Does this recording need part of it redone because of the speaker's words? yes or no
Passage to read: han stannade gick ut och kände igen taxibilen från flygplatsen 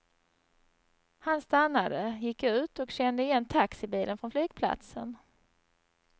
no